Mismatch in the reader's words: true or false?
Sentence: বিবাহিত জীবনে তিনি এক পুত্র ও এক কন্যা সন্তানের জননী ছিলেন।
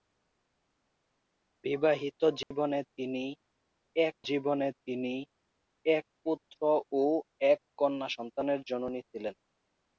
true